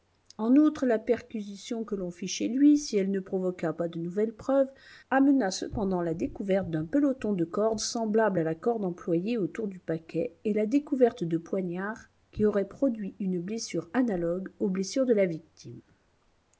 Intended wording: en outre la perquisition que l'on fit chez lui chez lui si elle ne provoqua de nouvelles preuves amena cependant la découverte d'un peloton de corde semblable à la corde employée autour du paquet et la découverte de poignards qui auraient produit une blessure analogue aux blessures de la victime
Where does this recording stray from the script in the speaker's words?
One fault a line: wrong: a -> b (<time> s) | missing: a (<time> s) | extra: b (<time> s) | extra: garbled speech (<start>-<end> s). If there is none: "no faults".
missing: chez lui (2.8 s)
extra: pas (3.7 s)